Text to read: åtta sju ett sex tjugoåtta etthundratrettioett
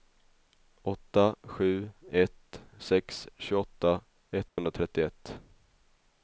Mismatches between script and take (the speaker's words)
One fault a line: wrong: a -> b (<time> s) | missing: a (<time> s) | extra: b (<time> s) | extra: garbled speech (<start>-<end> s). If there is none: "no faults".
no faults